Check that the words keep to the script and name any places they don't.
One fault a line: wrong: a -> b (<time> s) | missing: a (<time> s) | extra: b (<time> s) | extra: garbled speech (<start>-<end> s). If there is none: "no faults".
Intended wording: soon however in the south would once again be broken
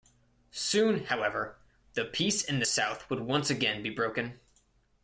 extra: the peace (1.9 s)